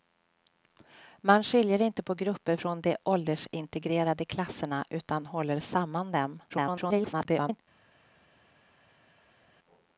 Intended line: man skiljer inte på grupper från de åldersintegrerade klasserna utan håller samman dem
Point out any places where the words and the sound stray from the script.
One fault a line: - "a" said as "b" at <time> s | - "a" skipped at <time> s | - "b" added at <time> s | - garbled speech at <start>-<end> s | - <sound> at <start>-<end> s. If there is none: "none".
- garbled speech at 6.5-7.6 s